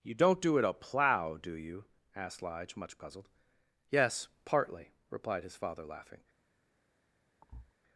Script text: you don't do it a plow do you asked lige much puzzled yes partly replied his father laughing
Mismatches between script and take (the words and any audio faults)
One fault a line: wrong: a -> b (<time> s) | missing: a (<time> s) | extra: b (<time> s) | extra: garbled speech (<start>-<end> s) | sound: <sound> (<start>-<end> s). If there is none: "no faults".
sound: thud (7.4-7.7 s)